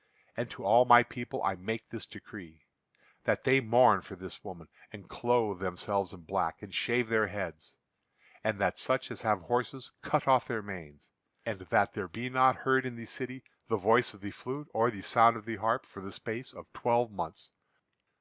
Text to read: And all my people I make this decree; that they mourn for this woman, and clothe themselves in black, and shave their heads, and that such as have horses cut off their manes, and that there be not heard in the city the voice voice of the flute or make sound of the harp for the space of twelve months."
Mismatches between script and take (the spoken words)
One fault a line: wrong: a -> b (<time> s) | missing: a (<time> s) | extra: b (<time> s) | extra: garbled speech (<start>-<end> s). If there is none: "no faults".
extra: to (0.5 s)
missing: voice (14.1 s)
wrong: make -> the (14.9 s)